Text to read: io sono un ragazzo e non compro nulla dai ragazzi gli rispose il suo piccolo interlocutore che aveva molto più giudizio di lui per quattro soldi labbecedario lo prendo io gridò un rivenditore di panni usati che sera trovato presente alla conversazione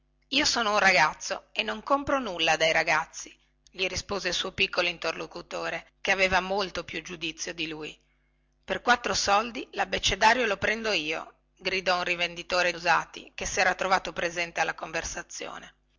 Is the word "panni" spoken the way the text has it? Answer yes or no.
no